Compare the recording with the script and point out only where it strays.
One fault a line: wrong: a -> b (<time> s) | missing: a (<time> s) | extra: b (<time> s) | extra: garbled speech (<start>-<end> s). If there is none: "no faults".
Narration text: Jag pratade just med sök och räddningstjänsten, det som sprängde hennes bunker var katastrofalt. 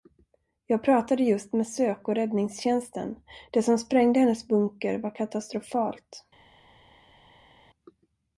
no faults